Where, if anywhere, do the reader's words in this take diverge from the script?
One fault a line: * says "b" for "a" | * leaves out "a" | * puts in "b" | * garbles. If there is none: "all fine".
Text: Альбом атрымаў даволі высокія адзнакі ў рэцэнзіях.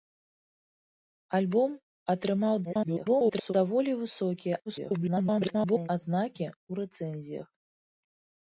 * garbles
* garbles